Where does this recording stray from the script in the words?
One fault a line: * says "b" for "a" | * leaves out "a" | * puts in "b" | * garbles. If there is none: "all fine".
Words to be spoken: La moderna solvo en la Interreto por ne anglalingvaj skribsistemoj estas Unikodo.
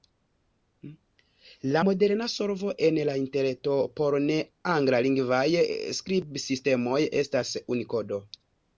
all fine